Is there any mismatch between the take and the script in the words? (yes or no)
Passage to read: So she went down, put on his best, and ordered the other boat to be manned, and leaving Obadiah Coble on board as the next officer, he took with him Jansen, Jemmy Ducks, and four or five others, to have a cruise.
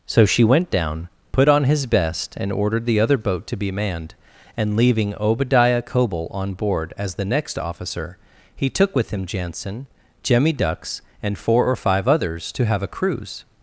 no